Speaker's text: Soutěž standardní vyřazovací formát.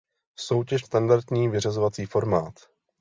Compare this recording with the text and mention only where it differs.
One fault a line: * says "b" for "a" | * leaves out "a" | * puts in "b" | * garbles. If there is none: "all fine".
all fine